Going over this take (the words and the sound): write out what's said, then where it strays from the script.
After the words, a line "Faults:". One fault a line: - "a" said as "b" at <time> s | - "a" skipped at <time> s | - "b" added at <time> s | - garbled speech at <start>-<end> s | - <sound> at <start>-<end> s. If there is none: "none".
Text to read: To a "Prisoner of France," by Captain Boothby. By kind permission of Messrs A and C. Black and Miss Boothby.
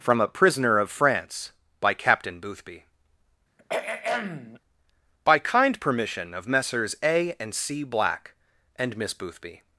From a "Prisoner of France," by Captain Boothby. By kind permission of Messrs A and C. Black and Miss Boothby.
Faults:
- "To" said as "From" at 0.0 s
- throat clearing at 3.6-4.6 s